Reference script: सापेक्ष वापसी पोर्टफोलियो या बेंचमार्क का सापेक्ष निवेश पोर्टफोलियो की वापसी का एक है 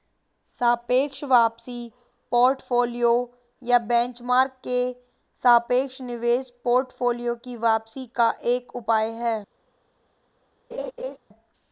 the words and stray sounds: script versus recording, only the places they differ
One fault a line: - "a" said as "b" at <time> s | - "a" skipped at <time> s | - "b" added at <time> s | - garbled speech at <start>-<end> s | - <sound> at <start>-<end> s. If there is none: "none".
- "का" said as "के" at 4.6 s
- "उपाय" added at 8.7 s
- laugh at 10.7-11.2 s